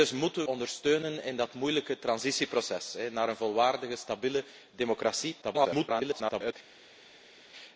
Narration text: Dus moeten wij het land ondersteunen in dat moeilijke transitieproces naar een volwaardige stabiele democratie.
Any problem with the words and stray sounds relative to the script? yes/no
yes